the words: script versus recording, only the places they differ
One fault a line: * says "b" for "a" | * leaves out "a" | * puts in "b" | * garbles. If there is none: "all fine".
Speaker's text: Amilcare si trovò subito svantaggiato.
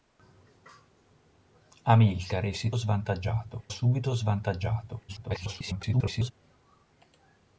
* says "svantaggiato" for "trovò"
* garbles